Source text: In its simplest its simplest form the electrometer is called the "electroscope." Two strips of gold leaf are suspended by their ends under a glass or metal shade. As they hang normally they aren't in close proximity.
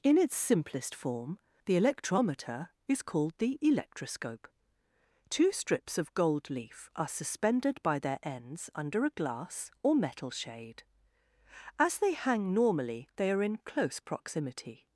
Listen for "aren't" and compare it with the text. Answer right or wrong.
wrong